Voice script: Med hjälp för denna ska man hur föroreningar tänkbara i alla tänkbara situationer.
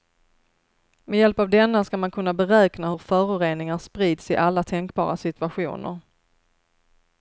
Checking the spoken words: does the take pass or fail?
fail